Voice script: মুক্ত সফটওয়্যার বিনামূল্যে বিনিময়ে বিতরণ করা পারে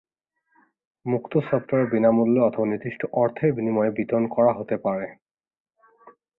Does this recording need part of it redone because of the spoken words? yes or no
yes